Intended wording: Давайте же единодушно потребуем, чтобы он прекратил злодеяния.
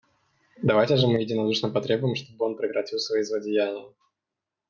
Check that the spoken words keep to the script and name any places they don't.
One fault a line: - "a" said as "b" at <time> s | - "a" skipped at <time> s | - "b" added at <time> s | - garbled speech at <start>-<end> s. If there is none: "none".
- "мы" added at 1.1 s
- "свои" added at 3.0 s